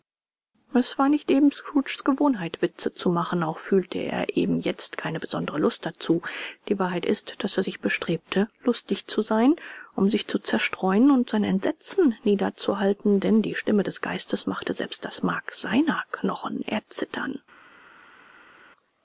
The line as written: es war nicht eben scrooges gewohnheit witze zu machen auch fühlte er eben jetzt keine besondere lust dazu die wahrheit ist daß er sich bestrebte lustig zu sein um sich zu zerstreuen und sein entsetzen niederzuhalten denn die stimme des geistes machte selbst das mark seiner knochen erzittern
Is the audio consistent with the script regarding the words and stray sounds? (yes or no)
yes